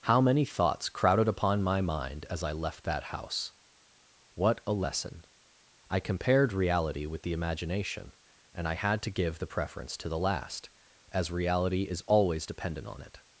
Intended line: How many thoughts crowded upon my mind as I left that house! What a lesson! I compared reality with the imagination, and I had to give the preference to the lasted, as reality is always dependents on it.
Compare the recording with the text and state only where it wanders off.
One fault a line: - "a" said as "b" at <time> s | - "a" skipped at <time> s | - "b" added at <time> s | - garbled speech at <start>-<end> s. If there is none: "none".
- "lasted" said as "last" at 10.2 s
- "dependents" said as "dependent" at 12.5 s